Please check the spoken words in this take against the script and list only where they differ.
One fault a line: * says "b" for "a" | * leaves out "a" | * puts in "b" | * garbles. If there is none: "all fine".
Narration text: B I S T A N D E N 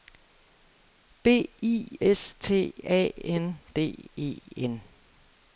all fine